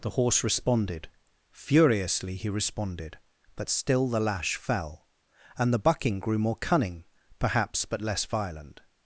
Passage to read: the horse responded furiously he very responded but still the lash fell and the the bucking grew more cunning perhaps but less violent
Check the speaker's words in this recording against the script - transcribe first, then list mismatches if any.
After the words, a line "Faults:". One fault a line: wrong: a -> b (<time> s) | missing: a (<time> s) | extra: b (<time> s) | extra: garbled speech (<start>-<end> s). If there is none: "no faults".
the horse responded furiously he responded but still the lash fell and the bucking grew more cunning perhaps but less violent
Faults:
missing: very (2.5 s)
missing: the (5.8 s)